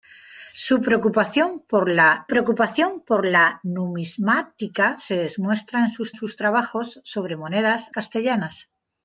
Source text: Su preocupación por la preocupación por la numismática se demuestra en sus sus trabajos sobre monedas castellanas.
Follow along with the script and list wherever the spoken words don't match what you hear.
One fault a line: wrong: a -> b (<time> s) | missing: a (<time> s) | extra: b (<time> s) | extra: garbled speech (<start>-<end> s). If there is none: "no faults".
no faults